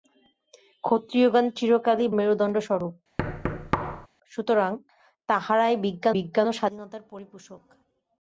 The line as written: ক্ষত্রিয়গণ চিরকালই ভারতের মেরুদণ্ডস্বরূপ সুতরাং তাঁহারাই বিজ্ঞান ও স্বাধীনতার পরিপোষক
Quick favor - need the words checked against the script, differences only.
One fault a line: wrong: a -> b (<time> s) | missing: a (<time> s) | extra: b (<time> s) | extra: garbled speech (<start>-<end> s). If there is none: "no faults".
missing: ভারতের (2.1 s)
extra: বিজ্ঞান (6.2 s)